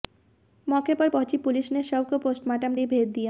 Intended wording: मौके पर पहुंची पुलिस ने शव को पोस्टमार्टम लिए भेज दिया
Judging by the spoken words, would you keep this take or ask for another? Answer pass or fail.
pass